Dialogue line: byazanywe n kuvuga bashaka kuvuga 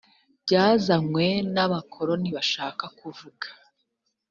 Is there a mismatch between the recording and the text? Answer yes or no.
yes